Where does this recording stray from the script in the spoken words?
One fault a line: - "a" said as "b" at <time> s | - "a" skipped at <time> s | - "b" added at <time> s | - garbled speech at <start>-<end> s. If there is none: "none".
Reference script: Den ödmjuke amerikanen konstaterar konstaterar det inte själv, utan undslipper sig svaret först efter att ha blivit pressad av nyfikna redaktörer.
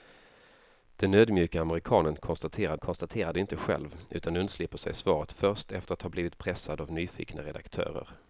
none